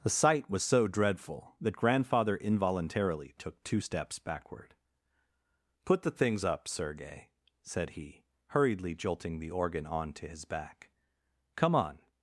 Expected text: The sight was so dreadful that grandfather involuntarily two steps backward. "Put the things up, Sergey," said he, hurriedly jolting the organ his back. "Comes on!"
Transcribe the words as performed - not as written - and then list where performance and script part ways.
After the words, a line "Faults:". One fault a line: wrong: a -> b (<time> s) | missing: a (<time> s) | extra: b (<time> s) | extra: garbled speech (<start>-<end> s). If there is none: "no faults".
The sight was so dreadful that grandfather involuntarily took two steps backward. "Put the things up, Sergey," said he, hurriedly jolting the organ on to his back. "Come on!"
Faults:
extra: took (3.4 s)
extra: on to (9.9 s)
wrong: Comes -> Come (11.5 s)